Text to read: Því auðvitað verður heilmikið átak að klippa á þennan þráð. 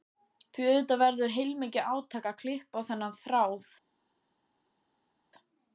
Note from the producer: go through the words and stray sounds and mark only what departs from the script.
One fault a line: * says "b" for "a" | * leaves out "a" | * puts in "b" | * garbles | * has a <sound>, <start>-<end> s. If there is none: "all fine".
all fine